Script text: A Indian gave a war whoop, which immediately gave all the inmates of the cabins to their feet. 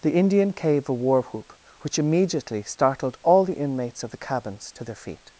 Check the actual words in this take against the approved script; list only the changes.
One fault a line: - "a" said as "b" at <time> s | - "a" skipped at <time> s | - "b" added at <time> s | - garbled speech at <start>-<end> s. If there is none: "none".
- "A" said as "The" at 0.0 s
- "gave" said as "startled" at 2.6 s